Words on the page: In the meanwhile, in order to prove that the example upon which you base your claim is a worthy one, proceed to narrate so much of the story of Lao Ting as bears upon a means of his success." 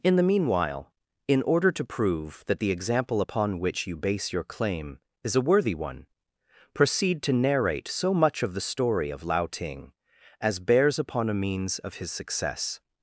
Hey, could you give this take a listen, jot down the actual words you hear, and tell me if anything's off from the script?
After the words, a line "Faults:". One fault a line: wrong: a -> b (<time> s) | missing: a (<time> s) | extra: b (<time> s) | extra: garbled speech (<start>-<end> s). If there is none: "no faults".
In the meanwhile, in order to prove that the example upon which you base your claim is a worthy one, proceed to narrate so much of the story of Lao Ting as bears upon a means of his success."
Faults:
no faults